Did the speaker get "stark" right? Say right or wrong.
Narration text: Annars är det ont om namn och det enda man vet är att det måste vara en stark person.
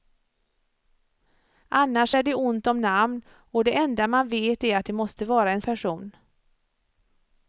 wrong